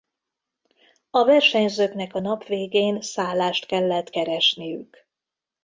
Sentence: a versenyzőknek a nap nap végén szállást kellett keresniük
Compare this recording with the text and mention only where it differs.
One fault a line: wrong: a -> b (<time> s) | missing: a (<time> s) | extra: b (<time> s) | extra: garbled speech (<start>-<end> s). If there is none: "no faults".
missing: nap (2.4 s)